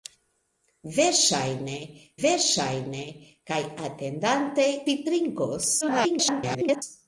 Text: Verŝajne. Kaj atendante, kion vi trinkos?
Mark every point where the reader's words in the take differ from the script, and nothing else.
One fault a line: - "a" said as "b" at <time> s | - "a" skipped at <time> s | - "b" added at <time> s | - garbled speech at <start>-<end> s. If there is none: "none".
- "verŝajne" added at 2.2 s
- "kion" skipped at 4.7 s
- garbled speech at 5.8-6.8 s